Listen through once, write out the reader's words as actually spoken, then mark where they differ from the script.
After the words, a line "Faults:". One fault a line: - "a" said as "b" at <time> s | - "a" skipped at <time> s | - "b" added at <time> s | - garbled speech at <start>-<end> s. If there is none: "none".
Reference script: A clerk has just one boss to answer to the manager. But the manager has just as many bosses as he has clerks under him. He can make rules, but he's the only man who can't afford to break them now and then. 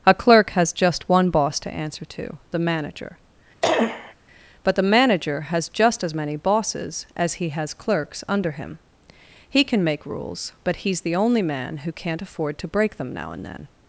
A clerk has just one boss to answer to the manager. But the manager has just as many bosses as he has clerks under him. He can make rules, but he's the only man who can't afford to break them now and then.
Faults:
none